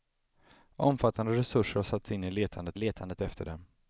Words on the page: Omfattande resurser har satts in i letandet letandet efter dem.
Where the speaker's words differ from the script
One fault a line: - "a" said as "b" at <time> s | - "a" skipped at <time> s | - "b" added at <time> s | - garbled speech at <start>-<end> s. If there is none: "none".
none